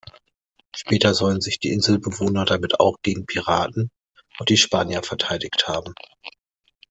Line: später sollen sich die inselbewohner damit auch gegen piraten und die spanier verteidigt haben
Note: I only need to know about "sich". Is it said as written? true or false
true